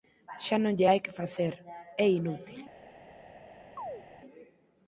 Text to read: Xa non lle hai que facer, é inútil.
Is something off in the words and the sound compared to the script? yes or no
yes